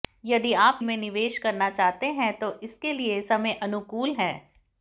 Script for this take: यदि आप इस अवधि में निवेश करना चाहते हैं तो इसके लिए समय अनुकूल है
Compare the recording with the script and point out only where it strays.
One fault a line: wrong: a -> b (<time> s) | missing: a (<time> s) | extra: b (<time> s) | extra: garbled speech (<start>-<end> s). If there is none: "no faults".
missing: इस अवधि (0.8 s)